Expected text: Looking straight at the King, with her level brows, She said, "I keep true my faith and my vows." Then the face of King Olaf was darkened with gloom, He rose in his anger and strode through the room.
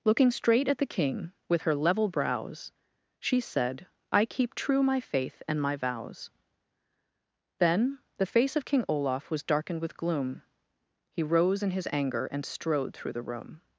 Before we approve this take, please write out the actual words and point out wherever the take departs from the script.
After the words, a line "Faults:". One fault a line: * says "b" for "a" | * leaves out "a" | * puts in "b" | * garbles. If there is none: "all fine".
Looking straight at the King, with her level brows, She said, "I keep true my faith and my vows." Then the face of King Olaf was darkened with gloom, He rose in his anger and strode through the room.
Faults:
all fine